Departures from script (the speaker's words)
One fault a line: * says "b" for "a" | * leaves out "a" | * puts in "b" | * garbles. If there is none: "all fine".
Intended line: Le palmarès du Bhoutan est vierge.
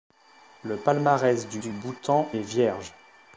* puts in "du"